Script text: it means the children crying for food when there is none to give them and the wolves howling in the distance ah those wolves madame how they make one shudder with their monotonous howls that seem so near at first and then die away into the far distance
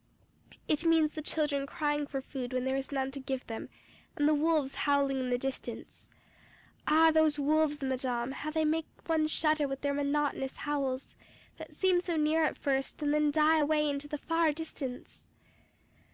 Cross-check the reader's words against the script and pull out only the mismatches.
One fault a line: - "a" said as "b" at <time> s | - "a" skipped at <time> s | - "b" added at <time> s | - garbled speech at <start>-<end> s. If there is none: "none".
none